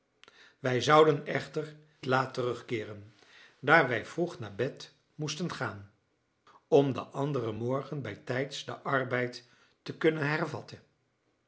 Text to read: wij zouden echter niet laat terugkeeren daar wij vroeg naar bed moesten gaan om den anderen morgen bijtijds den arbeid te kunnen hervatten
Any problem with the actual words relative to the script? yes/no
yes